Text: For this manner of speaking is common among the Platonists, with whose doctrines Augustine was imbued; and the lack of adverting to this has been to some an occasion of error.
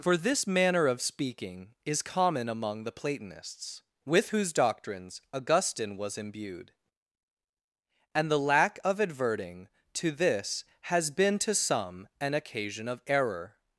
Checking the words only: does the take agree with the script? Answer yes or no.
yes